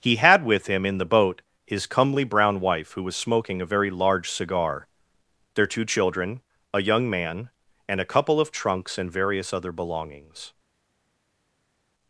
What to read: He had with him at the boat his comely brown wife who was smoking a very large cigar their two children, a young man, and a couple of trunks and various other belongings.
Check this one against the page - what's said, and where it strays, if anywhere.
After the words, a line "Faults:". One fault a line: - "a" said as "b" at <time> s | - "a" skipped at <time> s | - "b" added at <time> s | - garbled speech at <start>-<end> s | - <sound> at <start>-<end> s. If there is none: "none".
He had with him in the boat his comely brown wife who was smoking a very large cigar their two children, a young man, and a couple of trunks and various other belongings.
Faults:
- "at" said as "in" at 0.8 s